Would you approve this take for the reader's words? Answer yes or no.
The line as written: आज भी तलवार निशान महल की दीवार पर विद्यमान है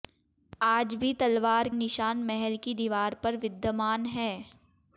yes